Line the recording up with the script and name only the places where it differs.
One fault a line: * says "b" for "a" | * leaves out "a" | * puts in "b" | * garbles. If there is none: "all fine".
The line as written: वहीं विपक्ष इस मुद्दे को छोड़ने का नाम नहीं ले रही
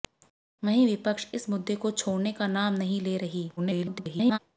* garbles